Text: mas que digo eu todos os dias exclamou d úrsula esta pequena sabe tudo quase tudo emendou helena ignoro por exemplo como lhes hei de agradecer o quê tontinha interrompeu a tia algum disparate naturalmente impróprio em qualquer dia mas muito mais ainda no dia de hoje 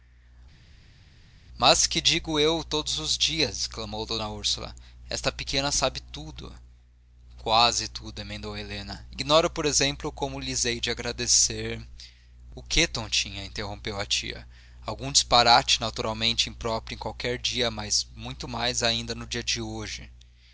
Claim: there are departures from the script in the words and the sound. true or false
false